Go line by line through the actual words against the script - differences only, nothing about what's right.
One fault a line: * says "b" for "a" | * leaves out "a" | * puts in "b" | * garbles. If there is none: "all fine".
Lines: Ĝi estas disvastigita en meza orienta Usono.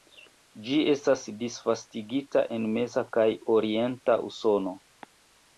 * puts in "kaj"